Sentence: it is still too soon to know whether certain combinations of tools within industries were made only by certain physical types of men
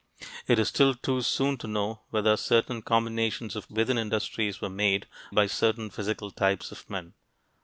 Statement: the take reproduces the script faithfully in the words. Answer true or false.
false